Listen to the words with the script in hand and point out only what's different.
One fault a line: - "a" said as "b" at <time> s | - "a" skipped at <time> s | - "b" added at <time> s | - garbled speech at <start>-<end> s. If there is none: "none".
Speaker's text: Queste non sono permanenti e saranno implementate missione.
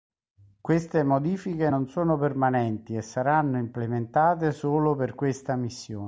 - "modifiche" added at 1.0 s
- "solo per questa" added at 4.5 s